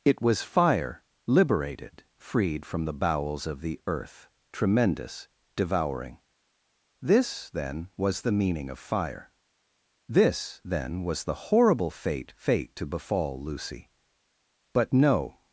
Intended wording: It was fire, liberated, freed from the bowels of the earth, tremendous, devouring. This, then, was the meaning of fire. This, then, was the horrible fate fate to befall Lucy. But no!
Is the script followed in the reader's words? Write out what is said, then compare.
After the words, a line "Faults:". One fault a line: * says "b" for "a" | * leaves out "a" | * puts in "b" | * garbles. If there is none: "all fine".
It was fire, liberated, freed from the bowels of the earth, tremendous, devouring. This, then, was the meaning of fire. This, then, was the horrible fate fate to befall Lucy. But no!
Faults:
all fine